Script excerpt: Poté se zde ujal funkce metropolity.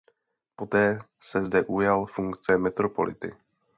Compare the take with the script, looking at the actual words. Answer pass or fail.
pass